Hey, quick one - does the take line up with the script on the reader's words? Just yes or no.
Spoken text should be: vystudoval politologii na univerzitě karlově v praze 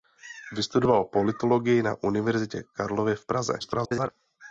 no